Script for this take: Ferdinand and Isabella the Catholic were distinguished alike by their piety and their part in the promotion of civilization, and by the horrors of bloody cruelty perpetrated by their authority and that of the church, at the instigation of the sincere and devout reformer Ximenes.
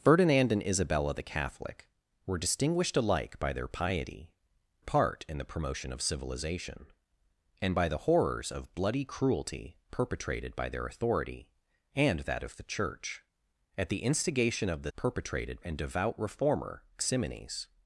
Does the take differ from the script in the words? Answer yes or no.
yes